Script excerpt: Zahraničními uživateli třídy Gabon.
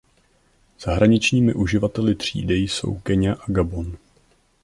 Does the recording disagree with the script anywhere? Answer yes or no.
yes